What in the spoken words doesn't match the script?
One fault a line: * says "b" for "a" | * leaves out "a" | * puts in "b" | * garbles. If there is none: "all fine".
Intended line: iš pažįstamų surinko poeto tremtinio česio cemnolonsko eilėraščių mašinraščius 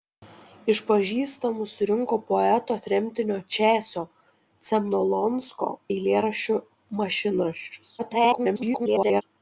* garbles